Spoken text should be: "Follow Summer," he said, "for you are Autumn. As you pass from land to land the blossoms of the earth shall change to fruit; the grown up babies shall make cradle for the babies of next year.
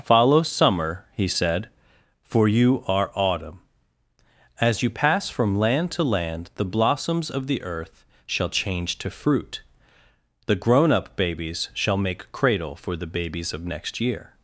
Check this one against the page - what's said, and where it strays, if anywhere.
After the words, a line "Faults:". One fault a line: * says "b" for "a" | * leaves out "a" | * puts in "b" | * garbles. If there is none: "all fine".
"Follow Summer," he said, "for you are Autumn. As you pass from land to land the blossoms of the earth shall change to fruit; the grown up babies shall make cradle for the babies of next year.
Faults:
all fine